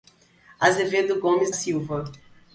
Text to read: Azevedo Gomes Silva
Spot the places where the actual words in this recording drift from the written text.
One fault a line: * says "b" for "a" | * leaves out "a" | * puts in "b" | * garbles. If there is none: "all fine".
all fine